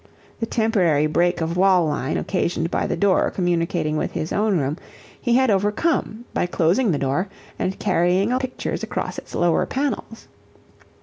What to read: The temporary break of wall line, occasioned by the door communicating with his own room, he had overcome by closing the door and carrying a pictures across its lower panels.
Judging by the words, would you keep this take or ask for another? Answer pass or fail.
pass